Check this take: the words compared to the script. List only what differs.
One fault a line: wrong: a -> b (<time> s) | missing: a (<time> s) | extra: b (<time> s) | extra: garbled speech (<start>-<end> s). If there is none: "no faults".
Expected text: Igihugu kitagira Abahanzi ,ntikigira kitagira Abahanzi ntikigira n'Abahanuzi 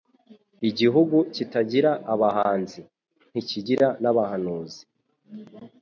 missing: kitagira Abahanzi ntikigira (3.9 s)